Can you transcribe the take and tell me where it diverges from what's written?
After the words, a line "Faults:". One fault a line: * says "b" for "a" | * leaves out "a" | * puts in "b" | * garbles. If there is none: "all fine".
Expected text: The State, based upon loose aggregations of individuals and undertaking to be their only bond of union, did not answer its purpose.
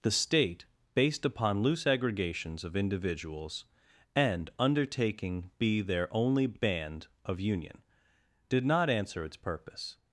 The State, based upon loose aggregations of individuals and undertaking be their only band of union, did not answer its purpose.
Faults:
* leaves out "to"
* says "band" for "bond"